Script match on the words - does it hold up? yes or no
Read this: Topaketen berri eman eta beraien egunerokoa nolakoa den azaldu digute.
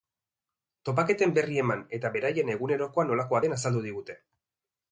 yes